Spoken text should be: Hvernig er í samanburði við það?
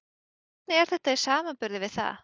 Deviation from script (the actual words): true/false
true